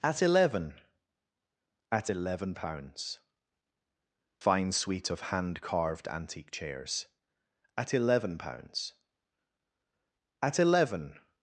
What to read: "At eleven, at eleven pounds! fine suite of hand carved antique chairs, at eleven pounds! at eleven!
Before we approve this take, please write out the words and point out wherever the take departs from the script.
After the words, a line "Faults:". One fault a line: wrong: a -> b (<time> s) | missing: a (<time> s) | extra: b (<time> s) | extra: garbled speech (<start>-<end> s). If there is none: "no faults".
"At eleven, at eleven pounds! fine suite of hand carved antique chairs, at eleven pounds! at eleven!
Faults:
no faults